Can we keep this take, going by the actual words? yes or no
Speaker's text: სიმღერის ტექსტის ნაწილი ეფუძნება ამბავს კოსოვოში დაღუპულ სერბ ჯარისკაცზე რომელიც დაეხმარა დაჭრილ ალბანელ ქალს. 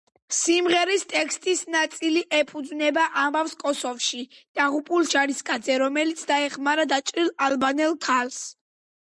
no